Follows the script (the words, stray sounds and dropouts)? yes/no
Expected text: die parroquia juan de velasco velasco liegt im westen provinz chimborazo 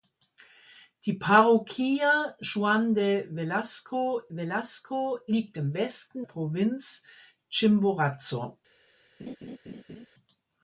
no